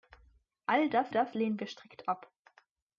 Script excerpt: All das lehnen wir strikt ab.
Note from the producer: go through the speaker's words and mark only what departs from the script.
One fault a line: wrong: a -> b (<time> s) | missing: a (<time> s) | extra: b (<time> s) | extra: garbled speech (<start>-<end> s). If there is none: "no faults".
extra: das (1.1 s)